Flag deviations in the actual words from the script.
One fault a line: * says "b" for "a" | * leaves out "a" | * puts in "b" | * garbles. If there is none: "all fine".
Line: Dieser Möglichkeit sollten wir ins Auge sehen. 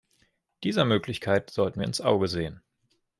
all fine